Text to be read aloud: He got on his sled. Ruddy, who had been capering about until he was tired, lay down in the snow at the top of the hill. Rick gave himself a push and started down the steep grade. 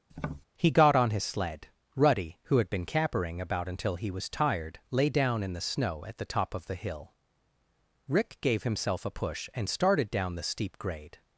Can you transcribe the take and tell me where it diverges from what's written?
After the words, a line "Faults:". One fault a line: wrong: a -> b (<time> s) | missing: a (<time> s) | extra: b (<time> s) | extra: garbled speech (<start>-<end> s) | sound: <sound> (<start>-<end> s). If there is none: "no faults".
He got on his sled. Ruddy, who had been capering about until he was tired, lay down in the snow at the top of the hill. Rick gave himself a push and started down the steep grade.
Faults:
sound: tap (0.1-0.4 s)